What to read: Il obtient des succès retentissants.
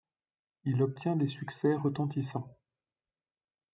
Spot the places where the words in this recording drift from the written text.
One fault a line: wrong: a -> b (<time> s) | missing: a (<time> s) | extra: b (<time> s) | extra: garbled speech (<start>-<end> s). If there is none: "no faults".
no faults